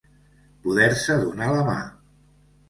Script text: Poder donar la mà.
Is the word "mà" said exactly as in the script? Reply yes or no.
yes